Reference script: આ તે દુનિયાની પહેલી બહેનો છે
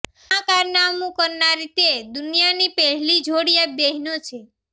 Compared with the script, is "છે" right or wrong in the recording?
right